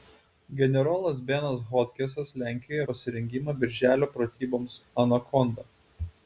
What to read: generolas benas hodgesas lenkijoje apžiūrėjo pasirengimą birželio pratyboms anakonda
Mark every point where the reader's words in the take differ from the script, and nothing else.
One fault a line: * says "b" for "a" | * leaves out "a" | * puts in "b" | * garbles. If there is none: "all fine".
* leaves out "apžiūrėjo"